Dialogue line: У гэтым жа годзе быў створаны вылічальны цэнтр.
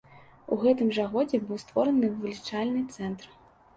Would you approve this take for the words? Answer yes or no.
yes